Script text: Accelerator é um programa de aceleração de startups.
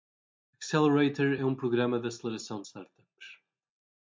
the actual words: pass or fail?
pass